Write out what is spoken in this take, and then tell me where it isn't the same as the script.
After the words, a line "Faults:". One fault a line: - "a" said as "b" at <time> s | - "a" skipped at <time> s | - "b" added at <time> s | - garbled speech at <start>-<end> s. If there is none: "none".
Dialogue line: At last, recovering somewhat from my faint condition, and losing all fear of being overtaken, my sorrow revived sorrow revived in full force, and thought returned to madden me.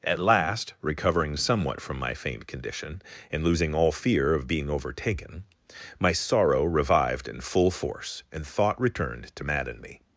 At last, recovering somewhat from my faint condition, and losing all fear of being overtaken, my sorrow revived in full force, and thought returned to madden me.
Faults:
- "sorrow revived" skipped at 7.3 s